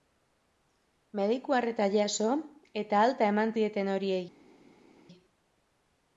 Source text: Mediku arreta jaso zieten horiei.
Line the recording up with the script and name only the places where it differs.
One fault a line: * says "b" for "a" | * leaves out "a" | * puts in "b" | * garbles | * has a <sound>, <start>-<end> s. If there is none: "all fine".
* puts in "eta alta eman"